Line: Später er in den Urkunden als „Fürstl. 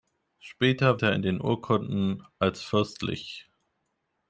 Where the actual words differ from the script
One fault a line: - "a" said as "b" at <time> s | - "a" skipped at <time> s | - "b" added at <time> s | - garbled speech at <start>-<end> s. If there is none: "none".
none